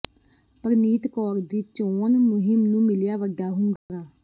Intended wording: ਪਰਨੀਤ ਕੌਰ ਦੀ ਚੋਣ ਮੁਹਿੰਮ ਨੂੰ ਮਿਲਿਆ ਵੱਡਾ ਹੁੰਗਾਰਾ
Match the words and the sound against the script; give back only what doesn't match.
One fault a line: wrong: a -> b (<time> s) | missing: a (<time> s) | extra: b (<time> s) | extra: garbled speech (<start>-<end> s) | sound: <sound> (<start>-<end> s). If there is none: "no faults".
sound: dropout (3.8-3.9 s)